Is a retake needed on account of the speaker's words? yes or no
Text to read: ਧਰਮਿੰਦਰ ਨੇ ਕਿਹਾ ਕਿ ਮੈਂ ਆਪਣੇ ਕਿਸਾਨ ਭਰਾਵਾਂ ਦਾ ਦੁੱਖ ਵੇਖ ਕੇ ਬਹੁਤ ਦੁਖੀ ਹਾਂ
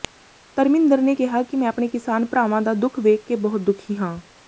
no